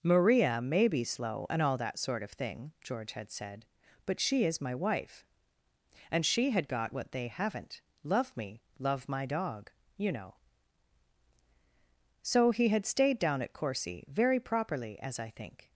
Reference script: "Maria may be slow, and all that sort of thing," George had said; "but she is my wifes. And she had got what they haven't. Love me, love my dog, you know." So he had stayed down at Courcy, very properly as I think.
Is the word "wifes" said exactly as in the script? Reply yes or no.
no